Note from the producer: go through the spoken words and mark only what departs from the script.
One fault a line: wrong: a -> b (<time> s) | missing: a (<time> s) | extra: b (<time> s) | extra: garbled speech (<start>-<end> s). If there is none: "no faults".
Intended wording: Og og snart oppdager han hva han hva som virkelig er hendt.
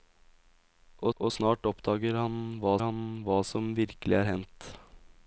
no faults